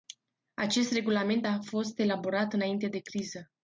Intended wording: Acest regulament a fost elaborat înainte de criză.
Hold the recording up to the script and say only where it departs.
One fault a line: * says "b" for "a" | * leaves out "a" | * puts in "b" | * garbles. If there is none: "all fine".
all fine